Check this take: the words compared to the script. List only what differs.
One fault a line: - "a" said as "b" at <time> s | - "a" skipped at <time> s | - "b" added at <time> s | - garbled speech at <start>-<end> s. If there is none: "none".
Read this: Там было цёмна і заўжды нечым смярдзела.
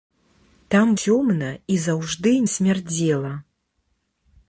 - "было" skipped at 0.9 s
- "нечым" skipped at 2.3 s